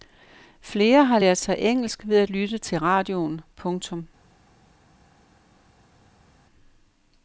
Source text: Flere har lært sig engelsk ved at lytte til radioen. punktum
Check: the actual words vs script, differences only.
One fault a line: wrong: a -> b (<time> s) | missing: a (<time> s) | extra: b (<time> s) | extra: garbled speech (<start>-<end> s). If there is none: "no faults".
no faults